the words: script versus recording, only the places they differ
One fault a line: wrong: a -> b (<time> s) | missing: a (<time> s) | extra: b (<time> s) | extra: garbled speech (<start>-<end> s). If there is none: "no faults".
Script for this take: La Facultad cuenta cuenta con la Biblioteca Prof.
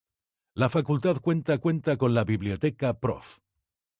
no faults